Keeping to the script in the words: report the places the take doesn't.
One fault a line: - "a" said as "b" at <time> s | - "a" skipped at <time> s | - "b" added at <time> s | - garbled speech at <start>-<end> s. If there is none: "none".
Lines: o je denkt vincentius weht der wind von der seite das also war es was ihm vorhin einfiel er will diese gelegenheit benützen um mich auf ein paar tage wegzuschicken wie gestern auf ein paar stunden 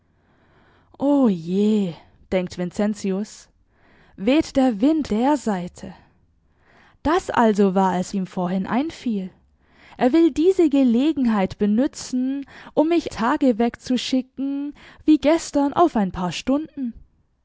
- "von" skipped at 5.1 s
- "was" skipped at 8.1 s
- "auf ein paar" skipped at 13.1 s